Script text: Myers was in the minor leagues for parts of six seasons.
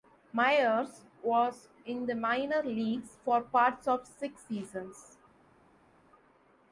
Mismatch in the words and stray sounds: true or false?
false